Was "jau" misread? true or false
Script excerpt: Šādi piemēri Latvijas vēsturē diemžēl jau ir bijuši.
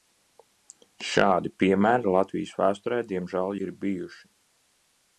true